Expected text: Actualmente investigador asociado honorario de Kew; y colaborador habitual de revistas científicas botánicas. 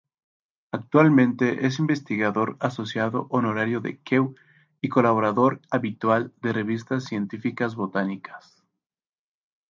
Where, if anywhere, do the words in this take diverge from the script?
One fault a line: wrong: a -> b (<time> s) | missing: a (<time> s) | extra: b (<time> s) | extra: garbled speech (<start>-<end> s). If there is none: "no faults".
extra: es (1.7 s)